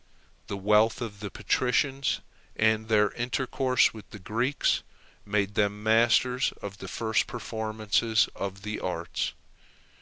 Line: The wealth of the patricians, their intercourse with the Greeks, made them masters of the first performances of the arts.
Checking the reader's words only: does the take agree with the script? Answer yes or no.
no